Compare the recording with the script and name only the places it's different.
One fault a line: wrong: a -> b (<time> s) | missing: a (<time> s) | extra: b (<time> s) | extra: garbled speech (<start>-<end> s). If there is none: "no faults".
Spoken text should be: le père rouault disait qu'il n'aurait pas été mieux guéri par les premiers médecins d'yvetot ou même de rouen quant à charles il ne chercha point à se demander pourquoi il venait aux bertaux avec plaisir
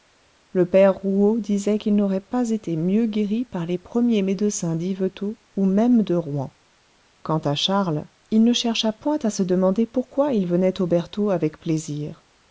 no faults